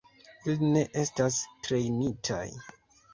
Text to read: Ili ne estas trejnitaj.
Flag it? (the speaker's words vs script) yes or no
no